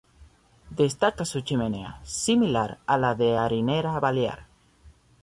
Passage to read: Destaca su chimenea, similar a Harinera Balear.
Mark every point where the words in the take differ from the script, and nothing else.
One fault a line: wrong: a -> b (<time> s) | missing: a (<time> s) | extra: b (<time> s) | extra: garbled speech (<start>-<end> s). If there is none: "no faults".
extra: la de (3.0 s)